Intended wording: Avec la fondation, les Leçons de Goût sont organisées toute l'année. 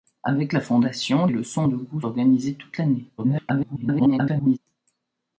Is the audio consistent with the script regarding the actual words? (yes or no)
no